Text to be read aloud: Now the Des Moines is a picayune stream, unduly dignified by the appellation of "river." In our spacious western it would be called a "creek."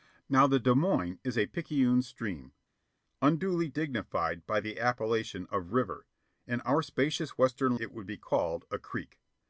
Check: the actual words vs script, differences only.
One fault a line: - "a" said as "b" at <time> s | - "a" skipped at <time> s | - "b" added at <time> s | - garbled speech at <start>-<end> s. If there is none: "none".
none